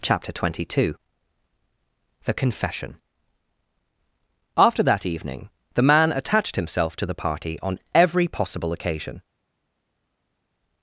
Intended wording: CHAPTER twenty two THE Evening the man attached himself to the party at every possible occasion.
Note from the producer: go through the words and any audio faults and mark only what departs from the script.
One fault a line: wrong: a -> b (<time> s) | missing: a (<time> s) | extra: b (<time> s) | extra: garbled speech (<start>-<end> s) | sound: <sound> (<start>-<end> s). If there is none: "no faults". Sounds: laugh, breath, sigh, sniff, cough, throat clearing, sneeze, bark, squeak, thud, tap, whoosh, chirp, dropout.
extra: CONFESSION After that (2.3 s)
wrong: at -> on (7.6 s)